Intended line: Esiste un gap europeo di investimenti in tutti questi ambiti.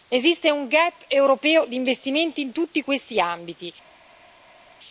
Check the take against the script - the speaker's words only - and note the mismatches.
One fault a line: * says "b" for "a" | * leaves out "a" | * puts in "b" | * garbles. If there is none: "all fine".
all fine